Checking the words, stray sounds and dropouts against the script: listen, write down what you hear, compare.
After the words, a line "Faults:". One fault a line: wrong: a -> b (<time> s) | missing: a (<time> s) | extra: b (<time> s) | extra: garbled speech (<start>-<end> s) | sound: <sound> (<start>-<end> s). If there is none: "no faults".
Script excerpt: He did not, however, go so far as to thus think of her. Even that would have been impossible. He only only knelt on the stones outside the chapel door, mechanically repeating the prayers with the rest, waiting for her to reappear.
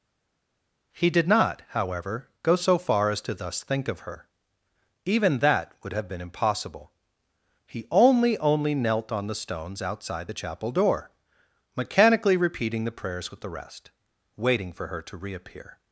He did not, however, go so far as to thus think of her. Even that would have been impossible. He only only knelt on the stones outside the chapel door, mechanically repeating the prayers with the rest, waiting for her to reappear.
Faults:
no faults